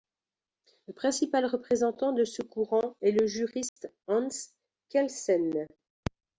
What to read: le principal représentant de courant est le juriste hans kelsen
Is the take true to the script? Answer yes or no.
no